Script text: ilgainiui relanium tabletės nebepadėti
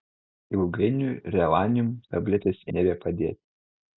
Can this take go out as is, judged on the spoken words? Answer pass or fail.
pass